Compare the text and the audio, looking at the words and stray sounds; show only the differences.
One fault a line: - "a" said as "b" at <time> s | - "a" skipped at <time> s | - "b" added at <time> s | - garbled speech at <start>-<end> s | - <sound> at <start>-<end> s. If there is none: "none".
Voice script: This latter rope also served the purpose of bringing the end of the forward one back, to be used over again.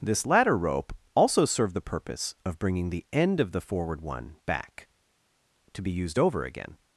none